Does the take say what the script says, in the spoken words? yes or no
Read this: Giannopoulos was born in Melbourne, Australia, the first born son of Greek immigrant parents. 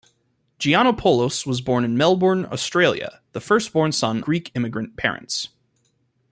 no